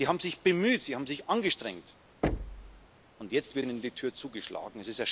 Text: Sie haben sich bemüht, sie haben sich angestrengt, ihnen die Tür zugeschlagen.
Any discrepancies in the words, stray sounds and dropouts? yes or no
yes